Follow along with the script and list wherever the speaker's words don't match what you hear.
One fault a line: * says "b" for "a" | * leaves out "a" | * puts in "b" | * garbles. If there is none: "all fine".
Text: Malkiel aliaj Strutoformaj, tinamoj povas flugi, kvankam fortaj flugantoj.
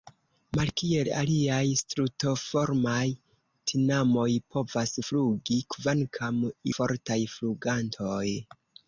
all fine